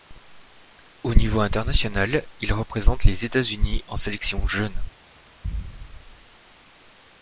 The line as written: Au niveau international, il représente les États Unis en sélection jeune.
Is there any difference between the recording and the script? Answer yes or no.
no